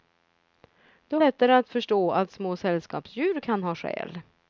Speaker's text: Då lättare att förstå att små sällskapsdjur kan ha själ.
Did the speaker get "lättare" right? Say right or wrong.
right